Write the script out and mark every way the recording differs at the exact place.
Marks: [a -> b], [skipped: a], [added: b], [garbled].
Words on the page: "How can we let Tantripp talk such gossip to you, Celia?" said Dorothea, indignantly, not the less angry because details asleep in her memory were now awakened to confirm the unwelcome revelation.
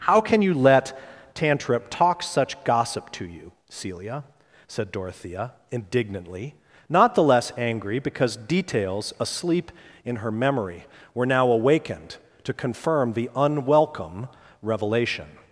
"How can [we -> you] let Tantripp talk such gossip to you, Celia?" said Dorothea, indignantly, not the less angry because details asleep in her memory were now awakened to confirm the unwelcome revelation.